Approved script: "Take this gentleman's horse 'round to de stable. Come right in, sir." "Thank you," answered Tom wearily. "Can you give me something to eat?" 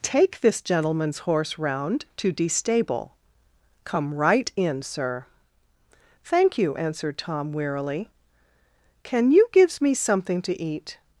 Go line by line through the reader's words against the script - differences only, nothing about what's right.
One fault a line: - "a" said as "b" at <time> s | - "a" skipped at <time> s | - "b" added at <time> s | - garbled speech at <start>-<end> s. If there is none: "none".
- "give" said as "gives" at 9.5 s